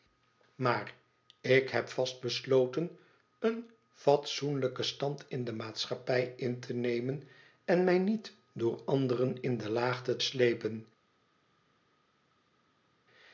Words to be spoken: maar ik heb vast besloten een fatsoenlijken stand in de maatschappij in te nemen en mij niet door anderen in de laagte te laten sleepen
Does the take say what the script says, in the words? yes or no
no